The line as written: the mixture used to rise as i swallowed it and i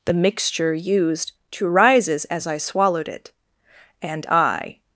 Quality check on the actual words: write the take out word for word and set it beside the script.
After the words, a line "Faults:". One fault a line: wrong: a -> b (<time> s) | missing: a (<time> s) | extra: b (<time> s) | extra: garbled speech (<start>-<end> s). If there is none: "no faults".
the mixture used to rises as i swallowed it and i
Faults:
wrong: rise -> rises (1.7 s)